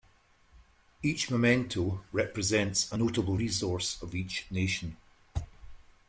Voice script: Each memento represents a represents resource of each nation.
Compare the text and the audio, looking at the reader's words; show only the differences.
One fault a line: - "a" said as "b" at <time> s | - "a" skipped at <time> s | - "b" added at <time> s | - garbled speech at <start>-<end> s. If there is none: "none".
- "represents" said as "notable" at 2.9 s